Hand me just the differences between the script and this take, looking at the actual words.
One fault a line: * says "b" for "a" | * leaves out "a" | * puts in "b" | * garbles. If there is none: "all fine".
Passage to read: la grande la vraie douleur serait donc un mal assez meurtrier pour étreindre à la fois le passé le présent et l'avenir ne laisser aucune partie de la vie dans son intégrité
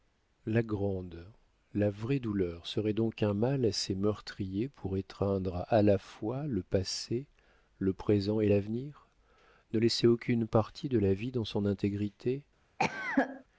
all fine